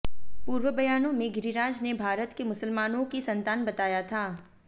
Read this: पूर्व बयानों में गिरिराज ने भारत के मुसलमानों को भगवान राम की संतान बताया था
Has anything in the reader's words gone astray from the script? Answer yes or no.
yes